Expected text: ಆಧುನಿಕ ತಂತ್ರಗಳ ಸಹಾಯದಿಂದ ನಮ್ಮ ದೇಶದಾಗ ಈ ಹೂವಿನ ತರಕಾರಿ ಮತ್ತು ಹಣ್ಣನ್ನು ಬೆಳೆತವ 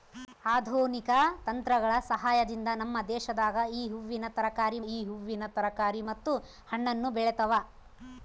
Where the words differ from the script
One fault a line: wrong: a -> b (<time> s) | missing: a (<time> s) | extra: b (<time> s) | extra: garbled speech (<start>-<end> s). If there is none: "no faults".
extra: ಈ ಹೂವಿನ ತರಕಾರಿ (4.9 s)